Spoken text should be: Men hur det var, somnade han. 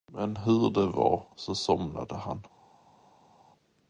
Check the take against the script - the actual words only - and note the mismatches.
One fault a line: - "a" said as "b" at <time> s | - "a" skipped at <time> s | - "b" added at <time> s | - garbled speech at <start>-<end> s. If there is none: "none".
- "så" added at 1.4 s